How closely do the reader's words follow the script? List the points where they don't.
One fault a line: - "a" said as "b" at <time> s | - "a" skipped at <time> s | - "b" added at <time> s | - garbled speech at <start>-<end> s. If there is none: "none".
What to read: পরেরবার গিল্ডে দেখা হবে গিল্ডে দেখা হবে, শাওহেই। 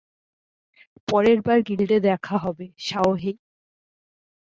- "গিল্ডে দেখা হবে" skipped at 2.6 s